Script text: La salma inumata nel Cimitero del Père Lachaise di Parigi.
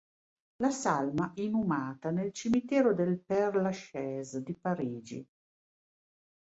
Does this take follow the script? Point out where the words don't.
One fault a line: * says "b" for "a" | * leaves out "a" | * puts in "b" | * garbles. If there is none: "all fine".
all fine